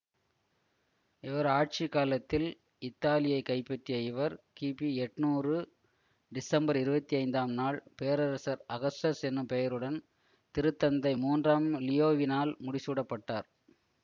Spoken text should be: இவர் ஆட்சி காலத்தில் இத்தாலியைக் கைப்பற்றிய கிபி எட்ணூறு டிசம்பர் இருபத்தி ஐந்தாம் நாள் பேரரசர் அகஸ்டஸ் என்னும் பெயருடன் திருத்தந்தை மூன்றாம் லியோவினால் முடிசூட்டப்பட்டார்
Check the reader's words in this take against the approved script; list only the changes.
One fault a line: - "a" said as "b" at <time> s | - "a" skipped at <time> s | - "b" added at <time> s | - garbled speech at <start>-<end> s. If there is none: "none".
- "இவர்" added at 4.0 s